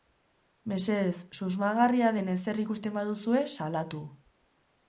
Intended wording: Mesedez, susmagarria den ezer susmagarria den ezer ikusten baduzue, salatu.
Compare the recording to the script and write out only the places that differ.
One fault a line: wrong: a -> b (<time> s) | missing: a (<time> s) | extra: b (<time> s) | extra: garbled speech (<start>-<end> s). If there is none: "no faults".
missing: susmagarria den ezer (2.6 s)